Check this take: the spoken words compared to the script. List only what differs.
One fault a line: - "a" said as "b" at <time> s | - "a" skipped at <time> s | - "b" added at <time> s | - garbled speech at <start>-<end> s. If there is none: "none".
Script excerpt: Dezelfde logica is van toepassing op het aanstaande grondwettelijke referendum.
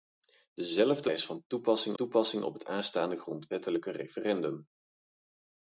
- "logica" skipped at 1.1 s
- "toepassing" added at 1.9 s